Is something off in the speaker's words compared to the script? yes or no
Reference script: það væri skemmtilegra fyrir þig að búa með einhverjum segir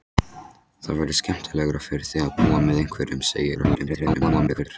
yes